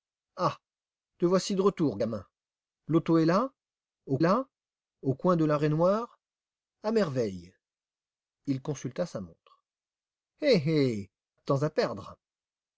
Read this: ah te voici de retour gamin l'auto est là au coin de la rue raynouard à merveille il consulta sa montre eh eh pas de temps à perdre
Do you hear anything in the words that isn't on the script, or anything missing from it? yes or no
yes